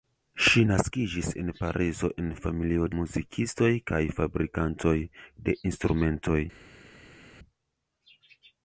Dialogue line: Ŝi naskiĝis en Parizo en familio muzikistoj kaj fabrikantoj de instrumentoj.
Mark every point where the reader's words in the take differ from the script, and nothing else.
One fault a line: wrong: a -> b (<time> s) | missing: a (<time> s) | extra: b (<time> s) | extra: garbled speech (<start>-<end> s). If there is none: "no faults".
no faults